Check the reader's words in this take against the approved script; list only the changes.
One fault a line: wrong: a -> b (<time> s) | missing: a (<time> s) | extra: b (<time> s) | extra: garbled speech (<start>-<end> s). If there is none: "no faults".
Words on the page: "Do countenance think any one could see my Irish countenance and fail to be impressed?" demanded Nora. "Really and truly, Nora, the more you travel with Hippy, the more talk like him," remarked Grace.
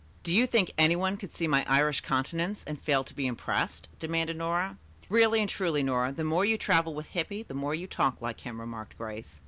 wrong: countenance -> you (0.3 s)
extra: you (7.7 s)